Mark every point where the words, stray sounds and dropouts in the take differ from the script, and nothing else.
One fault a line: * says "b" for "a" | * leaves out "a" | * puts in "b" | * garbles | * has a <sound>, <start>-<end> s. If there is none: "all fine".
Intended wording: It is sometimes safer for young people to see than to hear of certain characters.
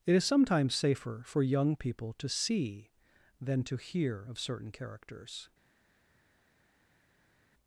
all fine